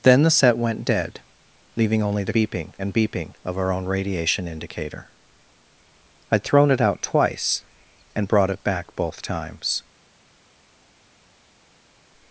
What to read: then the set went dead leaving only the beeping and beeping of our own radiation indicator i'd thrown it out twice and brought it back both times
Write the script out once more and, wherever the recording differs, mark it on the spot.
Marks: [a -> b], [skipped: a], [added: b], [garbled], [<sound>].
then the set went dead leaving only the beeping and beeping of our own radiation indicator i'd thrown it out twice and brought it back both times